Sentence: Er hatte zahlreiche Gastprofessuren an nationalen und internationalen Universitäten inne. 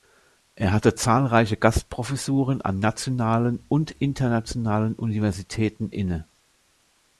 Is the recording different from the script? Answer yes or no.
no